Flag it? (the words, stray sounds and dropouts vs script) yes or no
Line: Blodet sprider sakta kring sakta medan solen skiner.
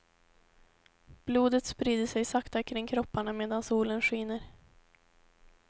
yes